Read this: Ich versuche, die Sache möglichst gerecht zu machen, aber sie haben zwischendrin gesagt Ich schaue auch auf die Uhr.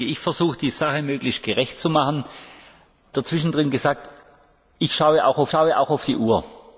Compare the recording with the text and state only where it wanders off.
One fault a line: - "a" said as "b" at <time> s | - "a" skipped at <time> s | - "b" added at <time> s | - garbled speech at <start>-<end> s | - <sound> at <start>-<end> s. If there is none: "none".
- "aber sie haben zwischendrin gesagt Ich" said as "zwischendrin gesagt Ich schaue auch auf" at 3.1 s